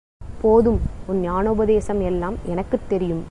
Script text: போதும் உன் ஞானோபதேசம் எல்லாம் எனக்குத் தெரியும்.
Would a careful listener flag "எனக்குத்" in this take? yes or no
no